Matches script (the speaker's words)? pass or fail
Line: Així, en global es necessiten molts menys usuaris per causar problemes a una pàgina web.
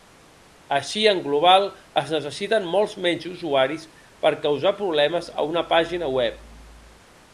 pass